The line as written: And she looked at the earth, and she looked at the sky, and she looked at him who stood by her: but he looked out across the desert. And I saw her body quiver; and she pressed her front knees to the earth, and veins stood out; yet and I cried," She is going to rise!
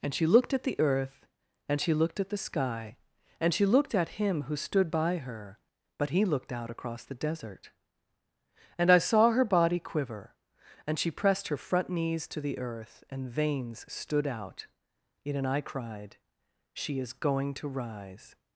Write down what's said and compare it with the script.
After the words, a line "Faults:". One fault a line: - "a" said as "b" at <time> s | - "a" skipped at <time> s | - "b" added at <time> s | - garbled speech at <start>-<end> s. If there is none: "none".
And she looked at the earth, and she looked at the sky, and she looked at him who stood by her: but he looked out across the desert. And I saw her body quiver; and she pressed her front knees to the earth, and veins stood out; yet and I cried," She is going to rise!
Faults:
none